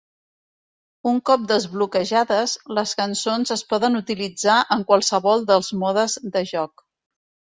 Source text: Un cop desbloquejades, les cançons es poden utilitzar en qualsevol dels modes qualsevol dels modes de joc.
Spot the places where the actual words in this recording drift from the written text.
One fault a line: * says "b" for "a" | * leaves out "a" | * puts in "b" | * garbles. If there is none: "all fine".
* leaves out "qualsevol dels modes"